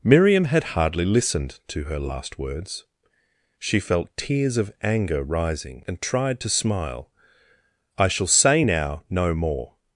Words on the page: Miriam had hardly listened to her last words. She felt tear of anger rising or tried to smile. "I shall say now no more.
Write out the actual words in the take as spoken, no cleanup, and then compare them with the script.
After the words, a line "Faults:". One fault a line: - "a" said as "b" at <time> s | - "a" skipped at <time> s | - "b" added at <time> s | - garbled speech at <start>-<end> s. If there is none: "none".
Miriam had hardly listened to her last words. She felt tears of anger rising and tried to smile. "I shall say now no more.
Faults:
- "tear" said as "tears" at 4.2 s
- "or" said as "and" at 5.9 s